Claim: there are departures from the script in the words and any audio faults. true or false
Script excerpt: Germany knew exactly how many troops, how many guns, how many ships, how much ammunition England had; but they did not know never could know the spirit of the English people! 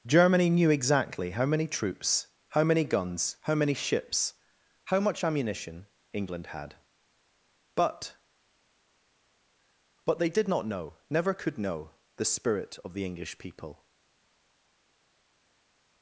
true